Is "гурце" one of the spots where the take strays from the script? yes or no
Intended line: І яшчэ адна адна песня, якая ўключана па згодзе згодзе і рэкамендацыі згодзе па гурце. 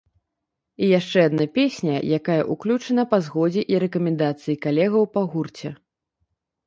no